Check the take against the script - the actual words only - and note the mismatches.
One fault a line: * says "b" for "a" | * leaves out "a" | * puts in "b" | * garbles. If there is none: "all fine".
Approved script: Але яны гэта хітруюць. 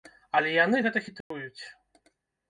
all fine